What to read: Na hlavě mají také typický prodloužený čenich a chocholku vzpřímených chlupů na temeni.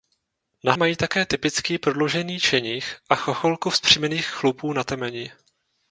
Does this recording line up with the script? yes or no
no